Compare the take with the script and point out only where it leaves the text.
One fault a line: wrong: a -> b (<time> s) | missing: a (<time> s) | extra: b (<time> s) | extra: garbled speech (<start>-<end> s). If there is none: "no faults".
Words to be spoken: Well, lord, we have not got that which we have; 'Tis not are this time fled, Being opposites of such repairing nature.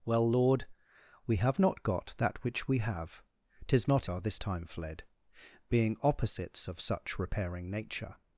no faults